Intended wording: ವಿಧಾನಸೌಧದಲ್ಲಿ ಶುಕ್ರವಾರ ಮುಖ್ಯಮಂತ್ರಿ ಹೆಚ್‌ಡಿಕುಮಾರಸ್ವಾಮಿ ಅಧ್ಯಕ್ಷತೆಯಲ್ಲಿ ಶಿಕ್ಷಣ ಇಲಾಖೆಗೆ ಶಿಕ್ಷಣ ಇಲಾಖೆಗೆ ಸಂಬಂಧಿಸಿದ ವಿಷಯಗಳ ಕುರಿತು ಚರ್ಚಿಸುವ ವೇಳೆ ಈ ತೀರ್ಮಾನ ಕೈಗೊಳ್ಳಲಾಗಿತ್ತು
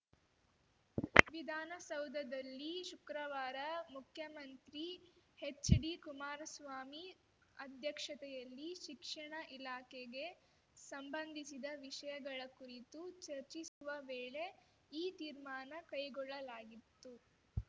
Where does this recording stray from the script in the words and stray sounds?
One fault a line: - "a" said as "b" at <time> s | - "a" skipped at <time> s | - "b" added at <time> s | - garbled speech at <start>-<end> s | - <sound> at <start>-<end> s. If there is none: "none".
- "ಶಿಕ್ಷಣ ಇಲಾಖೆಗೆ" skipped at 10.3 s
- dropout at 13.7-13.8 s